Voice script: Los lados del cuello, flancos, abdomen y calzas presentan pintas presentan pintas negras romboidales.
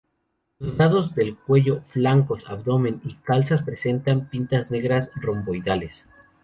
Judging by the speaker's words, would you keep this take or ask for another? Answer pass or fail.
fail